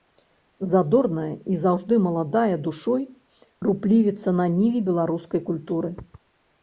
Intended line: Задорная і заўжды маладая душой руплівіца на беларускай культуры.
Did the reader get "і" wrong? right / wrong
right